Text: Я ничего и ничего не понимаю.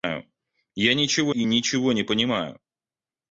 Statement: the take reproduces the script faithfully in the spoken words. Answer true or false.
true